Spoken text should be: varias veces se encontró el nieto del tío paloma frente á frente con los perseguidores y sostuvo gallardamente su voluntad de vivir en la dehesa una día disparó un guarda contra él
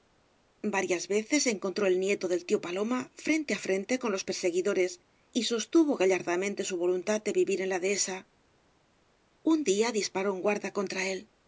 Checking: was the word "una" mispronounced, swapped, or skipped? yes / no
yes